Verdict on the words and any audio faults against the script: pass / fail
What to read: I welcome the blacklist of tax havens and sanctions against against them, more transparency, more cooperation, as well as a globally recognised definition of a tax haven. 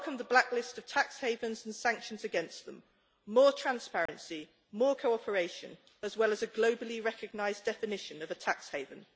fail